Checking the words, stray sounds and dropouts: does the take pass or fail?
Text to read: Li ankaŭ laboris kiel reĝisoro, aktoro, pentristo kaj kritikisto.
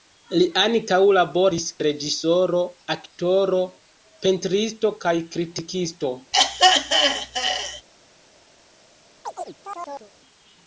fail